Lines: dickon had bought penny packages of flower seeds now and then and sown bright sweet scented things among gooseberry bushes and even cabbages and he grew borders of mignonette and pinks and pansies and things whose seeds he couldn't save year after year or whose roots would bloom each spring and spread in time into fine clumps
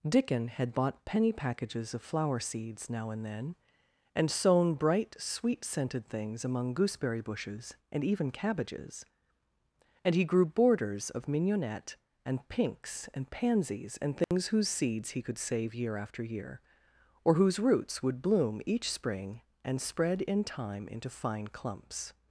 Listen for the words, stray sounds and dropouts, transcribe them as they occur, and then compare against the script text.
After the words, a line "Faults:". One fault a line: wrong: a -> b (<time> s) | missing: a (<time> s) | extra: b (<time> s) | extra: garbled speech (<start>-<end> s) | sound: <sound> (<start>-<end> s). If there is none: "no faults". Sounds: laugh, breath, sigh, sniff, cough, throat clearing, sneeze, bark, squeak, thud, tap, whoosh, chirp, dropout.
dickon had bought penny packages of flower seeds now and then and sown bright sweet scented things among gooseberry bushes and even cabbages and he grew borders of mignonette and pinks and pansies and things whose seeds he could save year after year or whose roots would bloom each spring and spread in time into fine clumps
Faults:
sound: dropout (14.2-14.3 s)
wrong: couldn't -> could (15.2 s)